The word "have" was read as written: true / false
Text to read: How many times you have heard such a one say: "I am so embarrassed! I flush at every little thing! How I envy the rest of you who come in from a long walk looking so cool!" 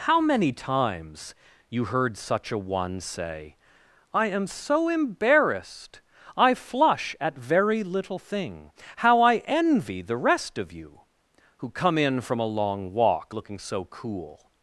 false